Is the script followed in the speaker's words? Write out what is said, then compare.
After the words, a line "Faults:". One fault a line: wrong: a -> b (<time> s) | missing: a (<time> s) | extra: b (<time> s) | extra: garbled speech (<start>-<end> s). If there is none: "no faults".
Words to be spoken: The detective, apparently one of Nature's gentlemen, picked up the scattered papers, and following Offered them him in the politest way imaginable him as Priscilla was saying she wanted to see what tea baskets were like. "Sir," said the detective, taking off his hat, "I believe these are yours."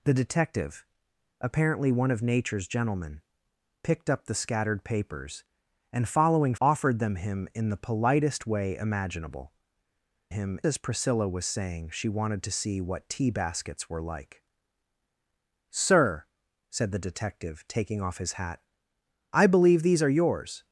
The detective, apparently one of Nature's gentlemen, picked up the scattered papers, and following Offered them him in the politest way imaginable him as Priscilla was saying she wanted to see what tea baskets were like. "Sir," said the detective, taking off his hat, "I believe these are yours."
Faults:
no faults